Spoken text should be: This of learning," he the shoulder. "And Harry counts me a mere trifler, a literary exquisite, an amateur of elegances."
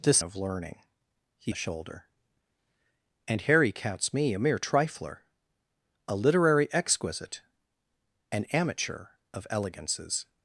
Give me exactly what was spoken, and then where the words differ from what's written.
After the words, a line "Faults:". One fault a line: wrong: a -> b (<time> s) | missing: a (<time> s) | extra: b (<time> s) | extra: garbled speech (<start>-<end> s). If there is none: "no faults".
This of learning," he the shoulder. "And Harry counts me a mere trifler, a literary exquisite, an amateur of elegances."
Faults:
no faults